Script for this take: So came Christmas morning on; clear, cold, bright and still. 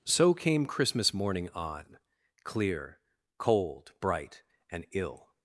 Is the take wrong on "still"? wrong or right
wrong